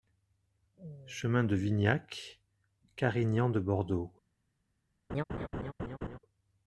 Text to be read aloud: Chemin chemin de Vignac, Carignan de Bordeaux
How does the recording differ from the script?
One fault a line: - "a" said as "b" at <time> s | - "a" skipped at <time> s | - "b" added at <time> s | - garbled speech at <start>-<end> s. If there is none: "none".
- "chemin" skipped at 1.4 s